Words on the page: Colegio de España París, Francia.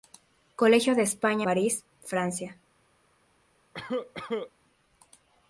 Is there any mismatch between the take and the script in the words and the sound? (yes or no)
yes